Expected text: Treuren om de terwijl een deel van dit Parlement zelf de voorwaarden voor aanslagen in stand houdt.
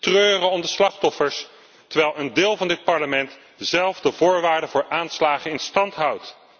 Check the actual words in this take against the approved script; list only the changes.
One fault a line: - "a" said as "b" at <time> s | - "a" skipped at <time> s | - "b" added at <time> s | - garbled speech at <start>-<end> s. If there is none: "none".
- "slachtoffers" added at 0.7 s